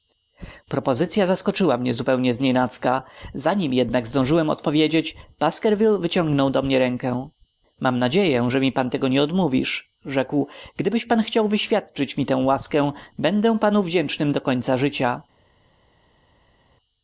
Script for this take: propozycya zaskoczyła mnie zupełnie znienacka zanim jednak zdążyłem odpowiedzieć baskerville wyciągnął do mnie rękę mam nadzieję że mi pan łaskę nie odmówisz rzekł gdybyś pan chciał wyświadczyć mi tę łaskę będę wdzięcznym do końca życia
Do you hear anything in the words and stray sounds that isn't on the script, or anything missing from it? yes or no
yes